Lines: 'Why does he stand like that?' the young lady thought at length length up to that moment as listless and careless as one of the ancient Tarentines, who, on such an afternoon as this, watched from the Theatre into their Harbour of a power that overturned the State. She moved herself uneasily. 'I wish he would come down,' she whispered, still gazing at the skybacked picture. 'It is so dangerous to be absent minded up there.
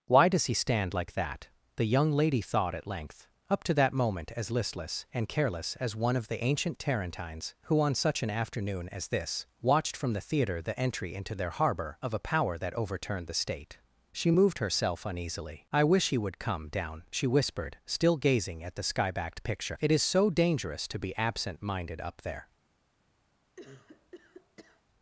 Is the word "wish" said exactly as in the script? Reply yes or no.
yes